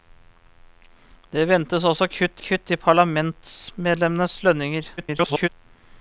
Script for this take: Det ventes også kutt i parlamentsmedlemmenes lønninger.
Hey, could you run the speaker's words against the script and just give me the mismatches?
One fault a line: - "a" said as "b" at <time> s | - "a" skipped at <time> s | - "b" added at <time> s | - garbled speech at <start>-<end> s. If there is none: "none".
- "kutt" added at 2.4 s
- garbled speech at 5.0-5.5 s